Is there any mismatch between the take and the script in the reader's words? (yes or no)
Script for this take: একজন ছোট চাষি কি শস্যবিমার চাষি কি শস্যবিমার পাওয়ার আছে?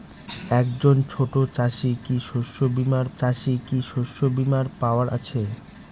no